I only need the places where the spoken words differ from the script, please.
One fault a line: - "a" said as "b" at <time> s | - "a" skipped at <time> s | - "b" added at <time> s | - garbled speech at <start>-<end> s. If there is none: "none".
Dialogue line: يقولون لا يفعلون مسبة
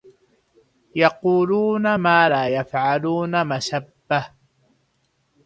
- "ما" added at 1.9 s